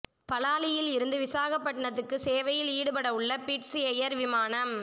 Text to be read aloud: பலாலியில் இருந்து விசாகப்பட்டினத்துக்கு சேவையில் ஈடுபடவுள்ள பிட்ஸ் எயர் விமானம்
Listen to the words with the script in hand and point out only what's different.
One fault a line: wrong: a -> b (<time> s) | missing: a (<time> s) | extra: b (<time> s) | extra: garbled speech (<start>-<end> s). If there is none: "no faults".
no faults